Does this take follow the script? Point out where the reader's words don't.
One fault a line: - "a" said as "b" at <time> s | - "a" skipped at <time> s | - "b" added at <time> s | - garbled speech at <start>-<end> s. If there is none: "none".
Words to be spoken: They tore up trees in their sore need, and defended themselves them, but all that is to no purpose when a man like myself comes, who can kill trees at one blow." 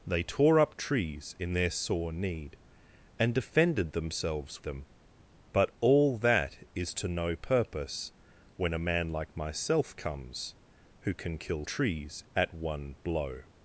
none